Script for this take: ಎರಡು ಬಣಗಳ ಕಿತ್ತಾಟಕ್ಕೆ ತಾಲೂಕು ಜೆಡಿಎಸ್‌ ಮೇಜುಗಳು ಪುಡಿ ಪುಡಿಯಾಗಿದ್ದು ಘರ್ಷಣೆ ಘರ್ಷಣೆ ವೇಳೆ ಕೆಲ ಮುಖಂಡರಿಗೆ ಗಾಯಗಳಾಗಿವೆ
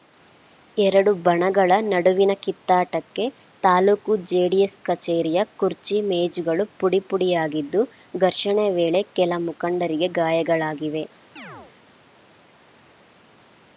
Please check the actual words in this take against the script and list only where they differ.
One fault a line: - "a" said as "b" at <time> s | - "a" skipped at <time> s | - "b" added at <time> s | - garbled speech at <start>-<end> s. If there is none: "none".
- "ನಡುವಿನ" added at 1.9 s
- "ಕಚೇರಿಯ ಕುರ್ಚಿ" added at 4.9 s
- "ಘರ್ಷಣೆ" skipped at 8.7 s